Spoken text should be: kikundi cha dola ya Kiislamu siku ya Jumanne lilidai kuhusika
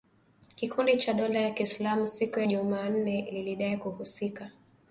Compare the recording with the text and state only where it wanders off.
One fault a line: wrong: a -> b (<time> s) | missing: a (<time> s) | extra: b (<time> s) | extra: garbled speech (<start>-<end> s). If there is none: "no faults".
no faults